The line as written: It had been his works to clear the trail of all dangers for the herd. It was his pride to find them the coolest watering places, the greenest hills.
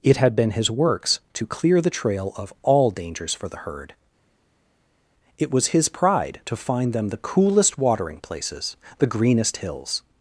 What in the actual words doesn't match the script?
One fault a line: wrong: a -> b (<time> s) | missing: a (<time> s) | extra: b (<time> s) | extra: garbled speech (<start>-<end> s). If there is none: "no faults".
no faults